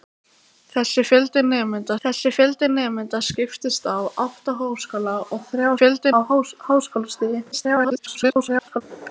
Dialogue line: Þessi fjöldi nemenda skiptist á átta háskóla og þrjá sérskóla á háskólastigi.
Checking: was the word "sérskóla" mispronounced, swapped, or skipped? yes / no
yes